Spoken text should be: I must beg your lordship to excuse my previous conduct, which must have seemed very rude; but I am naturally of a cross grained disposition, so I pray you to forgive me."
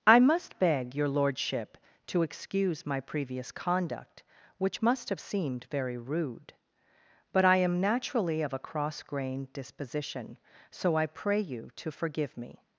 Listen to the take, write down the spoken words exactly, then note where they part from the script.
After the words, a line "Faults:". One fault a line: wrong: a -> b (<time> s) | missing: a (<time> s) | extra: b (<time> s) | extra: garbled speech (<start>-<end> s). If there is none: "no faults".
I must beg your lordship to excuse my previous conduct, which must have seemed very rude; but I am naturally of a cross grained disposition, so I pray you to forgive me."
Faults:
no faults